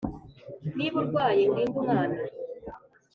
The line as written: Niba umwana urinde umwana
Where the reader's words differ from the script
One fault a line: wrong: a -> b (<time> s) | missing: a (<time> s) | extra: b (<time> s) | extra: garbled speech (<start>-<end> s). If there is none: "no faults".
wrong: umwana -> urwaye (1.0 s)